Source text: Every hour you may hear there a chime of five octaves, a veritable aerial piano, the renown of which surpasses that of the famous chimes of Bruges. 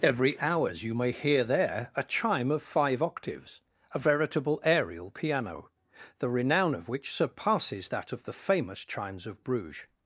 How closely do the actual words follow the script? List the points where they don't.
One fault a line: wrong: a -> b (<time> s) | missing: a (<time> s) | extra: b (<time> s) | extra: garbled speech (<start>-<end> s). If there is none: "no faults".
wrong: hour -> hours (0.4 s)